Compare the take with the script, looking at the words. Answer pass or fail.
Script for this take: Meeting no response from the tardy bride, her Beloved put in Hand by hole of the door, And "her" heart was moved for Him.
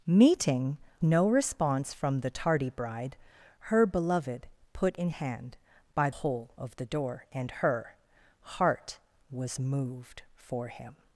pass